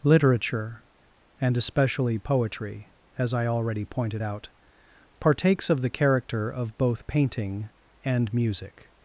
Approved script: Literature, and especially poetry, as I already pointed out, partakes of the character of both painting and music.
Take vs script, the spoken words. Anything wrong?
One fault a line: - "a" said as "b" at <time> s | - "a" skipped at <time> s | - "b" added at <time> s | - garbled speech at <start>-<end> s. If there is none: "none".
none